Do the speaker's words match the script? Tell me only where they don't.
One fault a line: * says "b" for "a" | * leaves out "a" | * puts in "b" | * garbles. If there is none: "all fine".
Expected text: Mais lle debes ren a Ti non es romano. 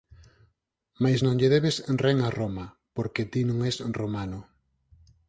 * puts in "non"
* puts in "Roma porque"